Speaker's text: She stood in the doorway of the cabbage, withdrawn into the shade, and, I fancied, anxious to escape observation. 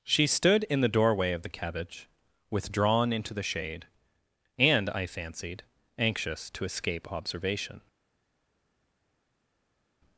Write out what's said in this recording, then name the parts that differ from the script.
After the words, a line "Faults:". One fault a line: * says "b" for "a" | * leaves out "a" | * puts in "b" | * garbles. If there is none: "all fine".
She stood in the doorway of the cabbage, withdrawn into the shade, and, I fancied, anxious to escape observation.
Faults:
all fine